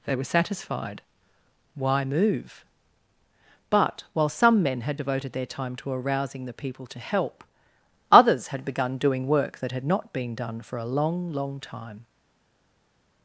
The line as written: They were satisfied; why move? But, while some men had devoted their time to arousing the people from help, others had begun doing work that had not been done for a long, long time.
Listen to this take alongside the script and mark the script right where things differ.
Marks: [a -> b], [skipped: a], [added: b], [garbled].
They were satisfied; why move? But, while some men had devoted their time to arousing the people [from -> to] help, others had begun doing work that had not been done for a long, long time.